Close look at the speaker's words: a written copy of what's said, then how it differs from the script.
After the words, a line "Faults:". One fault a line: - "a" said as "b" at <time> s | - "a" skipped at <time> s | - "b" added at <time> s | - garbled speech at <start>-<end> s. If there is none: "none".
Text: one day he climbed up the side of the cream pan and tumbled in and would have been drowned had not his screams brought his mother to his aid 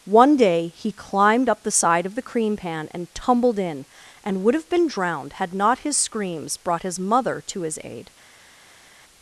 one day he climbed up the side of the cream pan and tumbled in and would have been drowned had not his screams brought his mother to his aid
Faults:
none